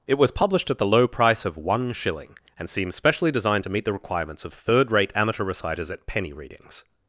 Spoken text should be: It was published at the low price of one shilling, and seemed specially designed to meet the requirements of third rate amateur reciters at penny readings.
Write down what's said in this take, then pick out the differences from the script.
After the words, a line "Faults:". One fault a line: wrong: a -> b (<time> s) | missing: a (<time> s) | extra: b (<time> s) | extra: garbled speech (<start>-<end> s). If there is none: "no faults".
It was published at the low price of one shilling, and seems specially designed to meet the requirements of third rate amateur reciters at penny readings.
Faults:
wrong: seemed -> seems (2.7 s)